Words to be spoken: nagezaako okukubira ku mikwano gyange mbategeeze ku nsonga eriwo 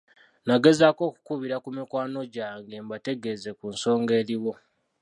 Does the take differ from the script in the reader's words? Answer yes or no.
no